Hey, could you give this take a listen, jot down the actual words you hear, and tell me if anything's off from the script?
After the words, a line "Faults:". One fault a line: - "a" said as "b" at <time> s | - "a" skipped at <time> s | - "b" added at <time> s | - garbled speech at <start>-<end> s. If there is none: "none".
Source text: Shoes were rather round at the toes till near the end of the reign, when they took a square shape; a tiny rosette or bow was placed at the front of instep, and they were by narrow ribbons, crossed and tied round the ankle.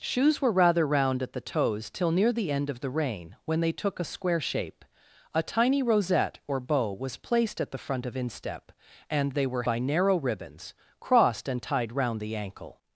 Shoes were rather round at the toes till near the end of the reign, when they took a square shape; a tiny rosette or bow was placed at the front of instep, and they were by narrow ribbons, crossed and tied round the ankle.
Faults:
none